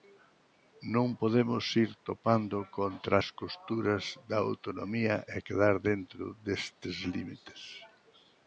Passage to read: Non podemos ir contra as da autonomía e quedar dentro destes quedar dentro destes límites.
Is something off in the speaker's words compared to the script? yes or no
yes